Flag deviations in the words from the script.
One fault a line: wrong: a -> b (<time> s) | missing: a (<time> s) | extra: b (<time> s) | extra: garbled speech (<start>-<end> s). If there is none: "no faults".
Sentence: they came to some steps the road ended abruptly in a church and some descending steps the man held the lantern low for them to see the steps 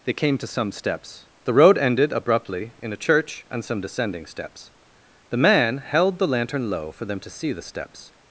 no faults